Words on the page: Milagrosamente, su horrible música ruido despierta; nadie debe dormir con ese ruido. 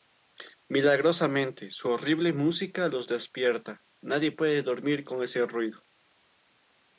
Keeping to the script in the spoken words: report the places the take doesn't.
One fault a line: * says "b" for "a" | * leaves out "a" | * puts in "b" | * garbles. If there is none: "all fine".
* says "los" for "ruido"
* says "puede" for "debe"